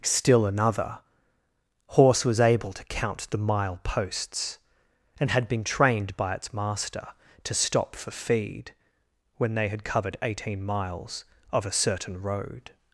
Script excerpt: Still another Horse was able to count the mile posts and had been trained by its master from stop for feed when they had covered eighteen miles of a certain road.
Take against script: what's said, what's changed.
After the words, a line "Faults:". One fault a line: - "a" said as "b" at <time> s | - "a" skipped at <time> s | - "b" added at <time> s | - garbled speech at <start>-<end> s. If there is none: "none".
Still another Horse was able to count the mile posts and had been trained by its master to stop for feed when they had covered eighteen miles of a certain road.
Faults:
- "from" said as "to" at 7.4 s